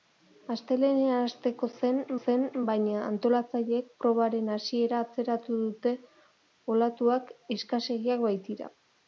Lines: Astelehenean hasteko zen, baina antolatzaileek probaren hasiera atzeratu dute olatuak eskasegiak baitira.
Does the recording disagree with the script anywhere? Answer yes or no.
yes